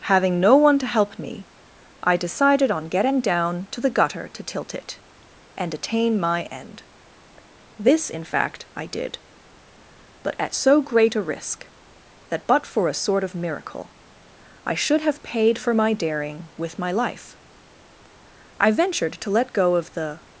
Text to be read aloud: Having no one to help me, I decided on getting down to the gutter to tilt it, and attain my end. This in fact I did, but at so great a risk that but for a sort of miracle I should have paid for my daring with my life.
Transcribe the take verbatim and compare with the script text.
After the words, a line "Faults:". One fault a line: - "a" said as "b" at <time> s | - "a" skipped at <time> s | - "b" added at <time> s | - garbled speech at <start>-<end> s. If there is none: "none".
Having no one to help me, I decided on getting down to the gutter to tilt it, and attain my end. This in fact I did, but at so great a risk that but for a sort of miracle I should have paid for my daring with my life. I ventured to let go of the
Faults:
- "I ventured to let go of the" added at 18.6 s